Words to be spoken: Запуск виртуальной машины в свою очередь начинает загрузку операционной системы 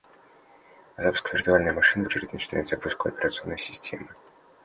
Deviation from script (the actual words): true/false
true